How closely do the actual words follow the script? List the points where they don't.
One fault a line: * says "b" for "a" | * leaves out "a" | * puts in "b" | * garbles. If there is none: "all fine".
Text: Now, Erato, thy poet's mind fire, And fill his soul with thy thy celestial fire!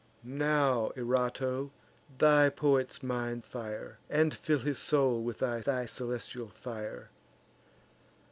all fine